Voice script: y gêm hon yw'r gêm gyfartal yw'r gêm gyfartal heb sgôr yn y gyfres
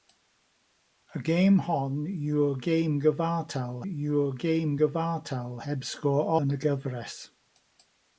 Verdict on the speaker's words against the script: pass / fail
pass